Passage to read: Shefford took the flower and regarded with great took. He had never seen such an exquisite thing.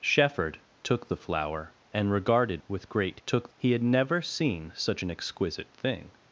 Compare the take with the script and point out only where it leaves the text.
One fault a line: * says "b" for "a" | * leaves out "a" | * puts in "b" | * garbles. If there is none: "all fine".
all fine